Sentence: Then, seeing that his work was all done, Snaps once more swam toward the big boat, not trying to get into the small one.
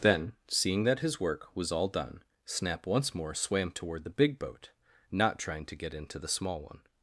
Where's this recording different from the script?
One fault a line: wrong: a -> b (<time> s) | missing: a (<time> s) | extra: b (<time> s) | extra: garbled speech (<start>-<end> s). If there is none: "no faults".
wrong: Snaps -> Snap (2.5 s)